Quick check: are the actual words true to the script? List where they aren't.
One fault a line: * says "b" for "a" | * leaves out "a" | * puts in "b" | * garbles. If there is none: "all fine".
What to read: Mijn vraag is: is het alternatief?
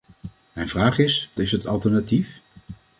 all fine